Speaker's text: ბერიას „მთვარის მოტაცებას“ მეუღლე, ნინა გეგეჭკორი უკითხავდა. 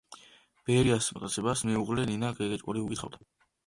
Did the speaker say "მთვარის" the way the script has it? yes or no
no